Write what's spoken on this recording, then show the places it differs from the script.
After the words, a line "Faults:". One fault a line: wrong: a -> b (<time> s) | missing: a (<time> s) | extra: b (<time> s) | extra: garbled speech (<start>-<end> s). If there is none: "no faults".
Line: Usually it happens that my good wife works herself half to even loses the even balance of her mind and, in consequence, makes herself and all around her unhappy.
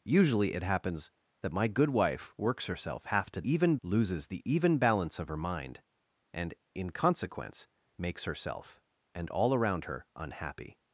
Usually it happens that my good wife works herself half to even loses the even balance of her mind and, in consequence, makes herself and all around her unhappy.
Faults:
no faults